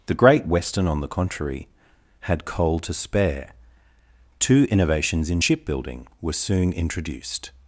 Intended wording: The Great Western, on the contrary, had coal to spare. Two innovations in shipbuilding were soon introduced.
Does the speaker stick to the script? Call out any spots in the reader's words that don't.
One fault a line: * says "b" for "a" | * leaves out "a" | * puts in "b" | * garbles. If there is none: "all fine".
all fine